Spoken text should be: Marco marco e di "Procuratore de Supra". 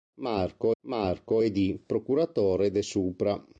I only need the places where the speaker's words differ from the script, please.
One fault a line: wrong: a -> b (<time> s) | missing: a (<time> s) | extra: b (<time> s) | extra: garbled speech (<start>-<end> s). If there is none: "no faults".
no faults